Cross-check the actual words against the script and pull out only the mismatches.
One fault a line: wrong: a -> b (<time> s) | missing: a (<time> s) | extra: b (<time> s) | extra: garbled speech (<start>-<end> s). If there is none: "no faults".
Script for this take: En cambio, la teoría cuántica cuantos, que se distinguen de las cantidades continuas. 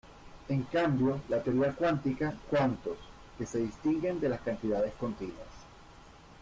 no faults